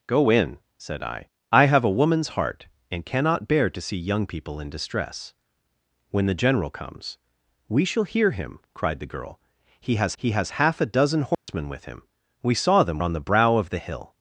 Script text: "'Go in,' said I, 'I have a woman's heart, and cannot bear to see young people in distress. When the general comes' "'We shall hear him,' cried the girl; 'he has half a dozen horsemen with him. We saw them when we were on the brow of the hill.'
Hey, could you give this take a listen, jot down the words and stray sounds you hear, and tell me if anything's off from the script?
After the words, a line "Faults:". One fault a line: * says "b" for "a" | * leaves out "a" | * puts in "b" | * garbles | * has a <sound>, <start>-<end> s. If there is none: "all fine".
"'Go in,' said I, 'I have a woman's heart, and cannot bear to see young people in distress. When the general comes' "'We shall hear him,' cried the girl; 'he has he has half a dozen horsemen with him. We saw them on the brow of the hill.'
Faults:
* puts in "he has"
* has a dropout, 11.3-11.5 s
* leaves out "when we were"